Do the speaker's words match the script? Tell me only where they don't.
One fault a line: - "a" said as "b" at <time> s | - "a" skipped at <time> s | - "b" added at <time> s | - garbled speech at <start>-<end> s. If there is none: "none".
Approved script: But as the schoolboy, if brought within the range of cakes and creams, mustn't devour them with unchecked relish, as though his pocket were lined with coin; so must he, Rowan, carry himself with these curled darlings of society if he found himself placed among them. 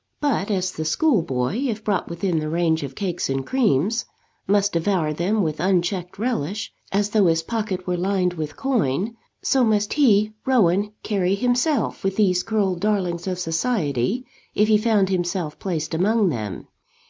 - "mustn't" said as "must" at 4.5 s